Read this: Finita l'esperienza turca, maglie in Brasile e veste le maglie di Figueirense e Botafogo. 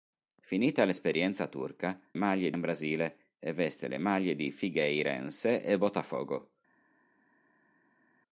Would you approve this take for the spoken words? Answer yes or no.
yes